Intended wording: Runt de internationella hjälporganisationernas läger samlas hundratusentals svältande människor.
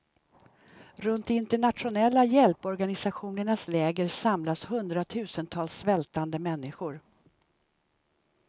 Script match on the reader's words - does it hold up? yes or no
yes